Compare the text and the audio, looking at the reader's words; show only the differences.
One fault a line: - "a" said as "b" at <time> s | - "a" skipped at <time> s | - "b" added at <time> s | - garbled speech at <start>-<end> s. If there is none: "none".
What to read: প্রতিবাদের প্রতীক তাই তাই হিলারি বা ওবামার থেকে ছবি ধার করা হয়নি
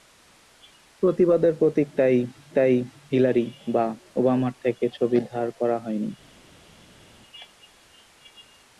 none